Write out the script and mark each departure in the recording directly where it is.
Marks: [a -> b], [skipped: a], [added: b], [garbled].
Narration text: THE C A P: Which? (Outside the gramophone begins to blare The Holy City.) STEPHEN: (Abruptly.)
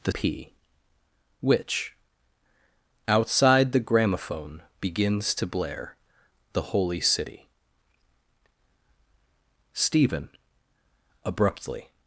THE [skipped: C A] P: Which? (Outside the gramophone begins to blare The Holy City.) STEPHEN: (Abruptly.)